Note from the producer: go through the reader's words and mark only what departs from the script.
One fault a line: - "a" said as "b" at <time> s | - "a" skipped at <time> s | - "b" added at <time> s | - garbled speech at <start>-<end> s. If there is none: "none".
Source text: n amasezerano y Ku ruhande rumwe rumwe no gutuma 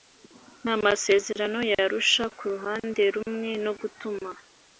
- "Arusha" added at 1.8 s
- "rumwe" skipped at 3.5 s